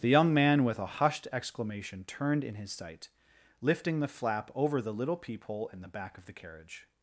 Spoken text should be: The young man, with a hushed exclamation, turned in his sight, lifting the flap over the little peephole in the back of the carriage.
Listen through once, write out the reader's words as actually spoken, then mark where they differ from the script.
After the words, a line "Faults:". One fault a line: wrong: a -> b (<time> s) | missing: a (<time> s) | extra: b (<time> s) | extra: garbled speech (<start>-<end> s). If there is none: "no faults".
The young man, with a hushed exclamation, turned in his sight, lifting the flap over the little peephole in the back of the carriage.
Faults:
no faults